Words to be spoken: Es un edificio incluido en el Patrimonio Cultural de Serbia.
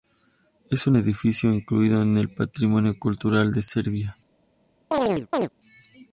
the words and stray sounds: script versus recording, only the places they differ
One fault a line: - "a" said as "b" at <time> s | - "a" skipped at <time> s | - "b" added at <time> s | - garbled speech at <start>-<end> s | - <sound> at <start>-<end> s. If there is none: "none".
- chirp at 4.9-5.5 s